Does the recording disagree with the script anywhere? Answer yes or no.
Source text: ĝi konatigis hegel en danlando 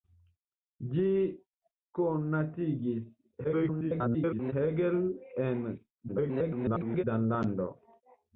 yes